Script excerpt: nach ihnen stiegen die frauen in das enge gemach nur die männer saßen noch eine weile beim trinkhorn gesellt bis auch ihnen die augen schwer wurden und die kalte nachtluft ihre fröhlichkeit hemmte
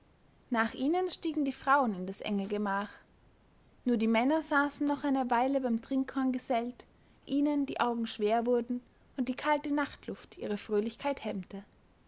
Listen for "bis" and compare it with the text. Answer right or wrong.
wrong